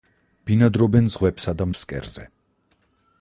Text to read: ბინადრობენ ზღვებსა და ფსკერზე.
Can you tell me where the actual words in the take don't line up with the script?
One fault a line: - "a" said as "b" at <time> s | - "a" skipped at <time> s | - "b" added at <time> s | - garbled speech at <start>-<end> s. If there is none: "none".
none